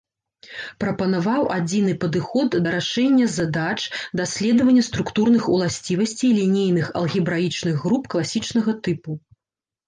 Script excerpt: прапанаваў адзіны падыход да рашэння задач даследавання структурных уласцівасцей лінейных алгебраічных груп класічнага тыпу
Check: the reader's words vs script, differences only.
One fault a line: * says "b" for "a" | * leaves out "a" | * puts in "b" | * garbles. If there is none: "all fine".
all fine